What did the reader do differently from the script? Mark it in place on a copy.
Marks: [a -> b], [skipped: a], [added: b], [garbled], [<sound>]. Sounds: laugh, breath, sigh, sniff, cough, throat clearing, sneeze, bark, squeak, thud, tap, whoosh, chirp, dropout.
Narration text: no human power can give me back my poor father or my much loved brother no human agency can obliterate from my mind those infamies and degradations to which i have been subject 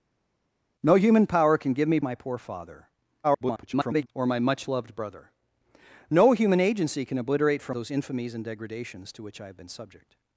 no human power can give me [skipped: back] my poor father [garbled] or my much loved brother no human agency can obliterate from [skipped: my mind] those infamies and degradations to which i have been subject